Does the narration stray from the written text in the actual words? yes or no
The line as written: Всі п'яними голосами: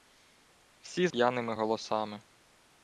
no